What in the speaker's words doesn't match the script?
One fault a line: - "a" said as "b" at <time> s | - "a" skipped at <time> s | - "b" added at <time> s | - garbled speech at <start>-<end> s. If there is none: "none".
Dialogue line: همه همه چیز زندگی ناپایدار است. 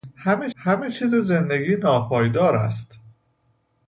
none